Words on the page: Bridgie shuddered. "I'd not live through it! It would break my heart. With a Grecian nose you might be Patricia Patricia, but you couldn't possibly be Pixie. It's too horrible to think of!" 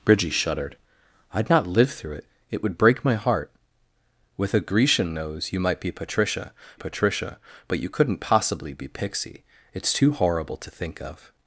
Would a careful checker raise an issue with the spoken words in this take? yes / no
no